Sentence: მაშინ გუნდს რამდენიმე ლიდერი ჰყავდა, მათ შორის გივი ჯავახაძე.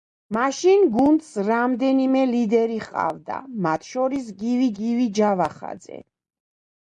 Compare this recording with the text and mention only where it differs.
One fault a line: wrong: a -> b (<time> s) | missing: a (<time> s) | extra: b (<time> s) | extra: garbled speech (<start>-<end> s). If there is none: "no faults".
extra: გივი (4.8 s)